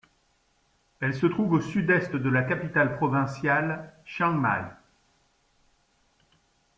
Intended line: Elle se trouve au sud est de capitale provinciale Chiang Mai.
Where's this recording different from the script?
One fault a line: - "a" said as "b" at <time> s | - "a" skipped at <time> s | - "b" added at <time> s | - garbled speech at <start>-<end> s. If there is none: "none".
- "la" added at 2.3 s